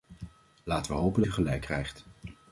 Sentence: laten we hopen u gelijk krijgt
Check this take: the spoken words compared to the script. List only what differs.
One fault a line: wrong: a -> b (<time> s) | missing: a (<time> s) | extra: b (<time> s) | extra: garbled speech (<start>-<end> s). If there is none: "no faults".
no faults